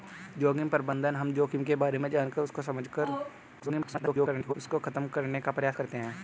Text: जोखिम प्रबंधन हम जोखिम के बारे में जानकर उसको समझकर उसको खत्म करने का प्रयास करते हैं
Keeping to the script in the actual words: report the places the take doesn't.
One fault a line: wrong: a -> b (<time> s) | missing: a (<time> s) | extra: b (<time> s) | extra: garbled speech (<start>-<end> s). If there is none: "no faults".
extra: garbled speech (3.6-4.5 s)